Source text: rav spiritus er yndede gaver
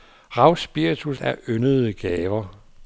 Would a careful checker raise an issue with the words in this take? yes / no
no